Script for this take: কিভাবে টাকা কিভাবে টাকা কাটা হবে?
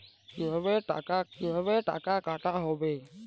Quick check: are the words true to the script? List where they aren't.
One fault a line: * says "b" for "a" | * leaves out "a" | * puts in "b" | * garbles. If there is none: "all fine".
all fine